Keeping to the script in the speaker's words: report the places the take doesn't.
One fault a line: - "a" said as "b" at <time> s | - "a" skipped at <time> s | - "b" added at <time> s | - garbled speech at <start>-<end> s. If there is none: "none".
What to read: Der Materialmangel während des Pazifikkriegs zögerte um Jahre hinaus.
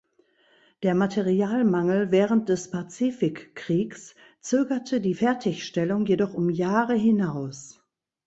- "die Fertigstellung jedoch" added at 5.0 s